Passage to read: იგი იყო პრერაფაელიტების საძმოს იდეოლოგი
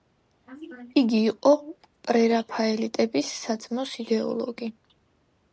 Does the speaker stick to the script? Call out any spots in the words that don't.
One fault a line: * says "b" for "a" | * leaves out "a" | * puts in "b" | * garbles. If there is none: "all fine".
all fine